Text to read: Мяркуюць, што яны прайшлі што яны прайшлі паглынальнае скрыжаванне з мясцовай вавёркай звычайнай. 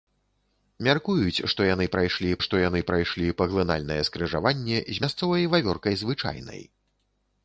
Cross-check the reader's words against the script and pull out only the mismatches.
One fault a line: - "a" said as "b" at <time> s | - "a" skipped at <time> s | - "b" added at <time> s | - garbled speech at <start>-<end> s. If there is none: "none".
none